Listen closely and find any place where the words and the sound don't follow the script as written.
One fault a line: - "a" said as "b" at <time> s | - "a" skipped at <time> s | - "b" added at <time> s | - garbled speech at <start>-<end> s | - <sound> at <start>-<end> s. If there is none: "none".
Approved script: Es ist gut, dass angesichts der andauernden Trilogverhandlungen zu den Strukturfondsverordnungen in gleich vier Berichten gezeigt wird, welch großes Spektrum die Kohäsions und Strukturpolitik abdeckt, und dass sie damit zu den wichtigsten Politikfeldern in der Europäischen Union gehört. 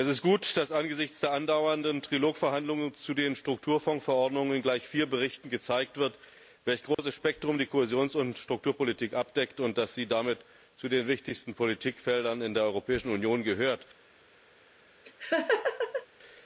- dropout at 6.9-7.0 s
- laugh at 15.0-16.1 s